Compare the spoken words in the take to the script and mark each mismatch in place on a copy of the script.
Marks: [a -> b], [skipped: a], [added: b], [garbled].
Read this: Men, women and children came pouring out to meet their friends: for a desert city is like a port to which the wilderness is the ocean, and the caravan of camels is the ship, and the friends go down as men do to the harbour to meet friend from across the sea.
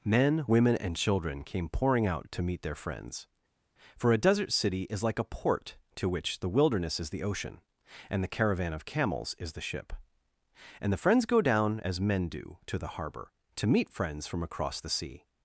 Men, women and children came pouring out to meet their friends: for a desert city is like a port to which the wilderness is the ocean, and the caravan of camels is the ship, and the friends go down as men do to the harbour to meet [friend -> friends] from across the sea.